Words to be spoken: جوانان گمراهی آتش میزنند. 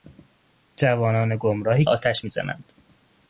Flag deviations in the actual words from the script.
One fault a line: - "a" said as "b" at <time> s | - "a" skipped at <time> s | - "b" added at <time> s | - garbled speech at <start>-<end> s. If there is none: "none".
none